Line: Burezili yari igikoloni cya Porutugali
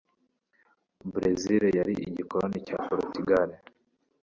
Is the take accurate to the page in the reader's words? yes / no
yes